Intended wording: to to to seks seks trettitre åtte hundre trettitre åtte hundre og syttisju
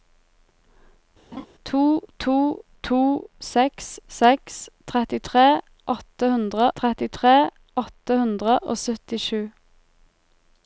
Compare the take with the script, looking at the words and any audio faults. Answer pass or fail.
fail